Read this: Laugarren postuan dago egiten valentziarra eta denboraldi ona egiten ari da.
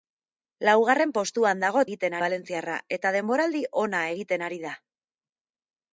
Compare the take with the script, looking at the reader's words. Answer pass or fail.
pass